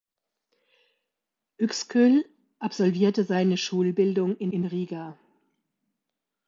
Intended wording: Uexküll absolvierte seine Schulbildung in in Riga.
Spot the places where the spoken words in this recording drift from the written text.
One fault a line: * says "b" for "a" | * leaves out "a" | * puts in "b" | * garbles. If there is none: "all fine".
all fine